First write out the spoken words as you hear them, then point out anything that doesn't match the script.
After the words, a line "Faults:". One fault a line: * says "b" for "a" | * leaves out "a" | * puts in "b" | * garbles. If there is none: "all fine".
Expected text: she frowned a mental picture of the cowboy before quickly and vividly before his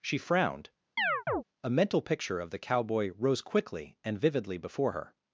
she frowned a mental picture of the cowboy rose quickly and vividly before her
Faults:
* says "rose" for "before"
* says "her" for "his"